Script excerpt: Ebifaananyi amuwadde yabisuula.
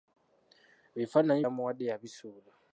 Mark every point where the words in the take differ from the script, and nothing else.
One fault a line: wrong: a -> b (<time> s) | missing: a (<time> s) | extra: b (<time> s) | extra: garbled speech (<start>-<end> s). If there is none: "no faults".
no faults